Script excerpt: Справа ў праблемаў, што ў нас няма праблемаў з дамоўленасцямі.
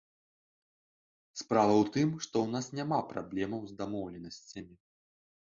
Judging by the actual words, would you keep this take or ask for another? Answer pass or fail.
fail